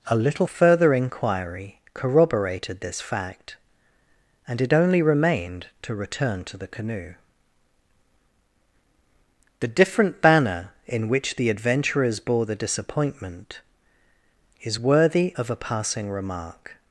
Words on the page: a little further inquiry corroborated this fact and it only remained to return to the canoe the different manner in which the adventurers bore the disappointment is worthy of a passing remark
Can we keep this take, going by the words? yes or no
no